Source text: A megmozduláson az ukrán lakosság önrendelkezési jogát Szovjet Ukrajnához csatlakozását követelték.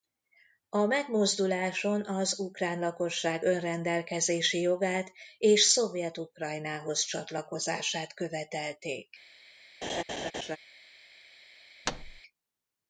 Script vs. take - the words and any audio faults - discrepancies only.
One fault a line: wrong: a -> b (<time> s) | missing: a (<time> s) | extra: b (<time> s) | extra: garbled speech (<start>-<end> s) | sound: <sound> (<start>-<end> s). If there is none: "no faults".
extra: és (5.4 s)
sound: laugh (9.8-10.6 s)
sound: thud (11.8-12.2 s)